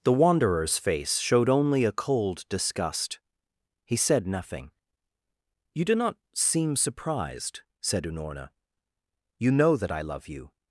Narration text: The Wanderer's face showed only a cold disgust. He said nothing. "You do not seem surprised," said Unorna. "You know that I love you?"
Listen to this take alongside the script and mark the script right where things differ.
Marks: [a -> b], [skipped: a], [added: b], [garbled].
The Wanderer's face showed only a cold disgust. He said nothing. "You do not seem surprised," said Unorna. "You know that I love you?"